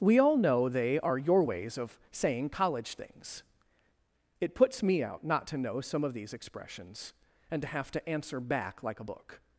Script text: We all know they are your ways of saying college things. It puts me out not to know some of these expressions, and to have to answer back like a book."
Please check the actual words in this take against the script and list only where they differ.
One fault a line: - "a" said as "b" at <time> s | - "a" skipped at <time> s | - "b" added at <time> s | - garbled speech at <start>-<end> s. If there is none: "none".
none